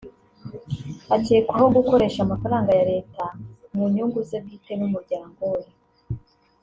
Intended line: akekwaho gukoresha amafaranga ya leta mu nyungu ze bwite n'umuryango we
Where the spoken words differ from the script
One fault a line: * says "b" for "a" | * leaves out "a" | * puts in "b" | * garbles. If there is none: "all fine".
all fine